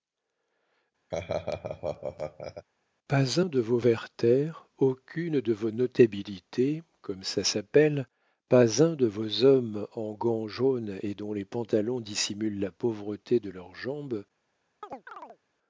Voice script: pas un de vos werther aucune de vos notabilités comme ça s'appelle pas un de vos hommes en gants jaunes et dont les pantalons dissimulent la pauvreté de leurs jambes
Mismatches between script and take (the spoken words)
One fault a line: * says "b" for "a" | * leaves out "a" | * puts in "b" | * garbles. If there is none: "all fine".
all fine